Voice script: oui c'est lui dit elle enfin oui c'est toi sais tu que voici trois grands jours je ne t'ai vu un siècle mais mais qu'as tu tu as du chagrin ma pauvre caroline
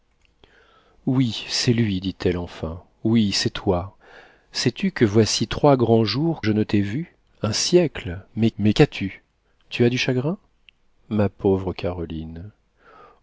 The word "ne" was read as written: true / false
true